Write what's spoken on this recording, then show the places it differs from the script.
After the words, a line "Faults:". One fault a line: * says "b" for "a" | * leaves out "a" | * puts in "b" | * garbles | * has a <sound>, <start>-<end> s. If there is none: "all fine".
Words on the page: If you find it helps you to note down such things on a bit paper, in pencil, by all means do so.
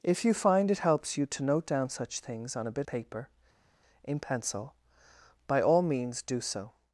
If you find it helps you to note down such things on a bit paper, in pencil, by all means do so.
Faults:
all fine